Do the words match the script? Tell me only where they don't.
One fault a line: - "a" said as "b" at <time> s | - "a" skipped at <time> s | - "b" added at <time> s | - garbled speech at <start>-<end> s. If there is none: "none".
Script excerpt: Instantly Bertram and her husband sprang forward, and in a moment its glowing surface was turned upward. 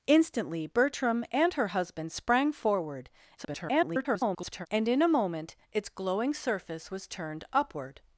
- garbled speech at 3.4-4.7 s